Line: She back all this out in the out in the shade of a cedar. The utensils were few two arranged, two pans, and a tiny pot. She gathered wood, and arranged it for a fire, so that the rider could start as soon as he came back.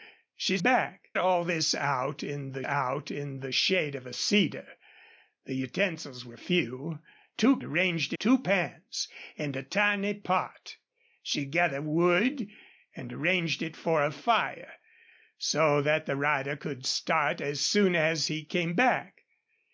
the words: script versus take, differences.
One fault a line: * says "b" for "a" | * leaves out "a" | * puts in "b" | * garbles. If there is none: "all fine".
all fine